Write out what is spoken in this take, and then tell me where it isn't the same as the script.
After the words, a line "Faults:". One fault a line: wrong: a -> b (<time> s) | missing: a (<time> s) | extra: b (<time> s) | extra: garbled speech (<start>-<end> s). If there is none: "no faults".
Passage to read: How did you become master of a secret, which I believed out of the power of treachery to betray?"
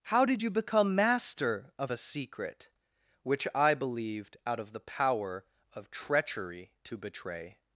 How did you become master of a secret, which I believed out of the power of treachery to betray?"
Faults:
no faults